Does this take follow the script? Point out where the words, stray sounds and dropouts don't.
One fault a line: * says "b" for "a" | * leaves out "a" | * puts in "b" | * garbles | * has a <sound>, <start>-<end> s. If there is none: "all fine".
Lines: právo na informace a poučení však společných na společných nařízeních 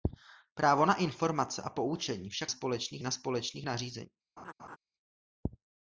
* has a laugh, 4.4-4.8 s